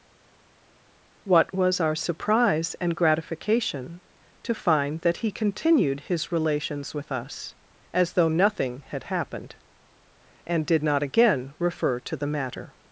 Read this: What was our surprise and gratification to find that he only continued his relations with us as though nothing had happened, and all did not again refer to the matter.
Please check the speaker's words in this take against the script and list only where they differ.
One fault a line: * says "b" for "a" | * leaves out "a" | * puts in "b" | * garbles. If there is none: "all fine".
* leaves out "only"
* leaves out "all"